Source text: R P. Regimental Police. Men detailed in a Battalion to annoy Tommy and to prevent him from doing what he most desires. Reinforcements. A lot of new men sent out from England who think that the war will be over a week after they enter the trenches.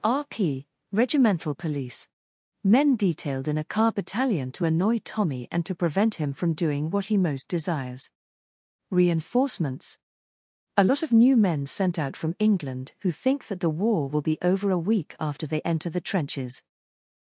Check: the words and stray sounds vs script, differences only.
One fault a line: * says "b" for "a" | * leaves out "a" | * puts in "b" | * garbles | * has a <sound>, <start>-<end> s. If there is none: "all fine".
* puts in "car"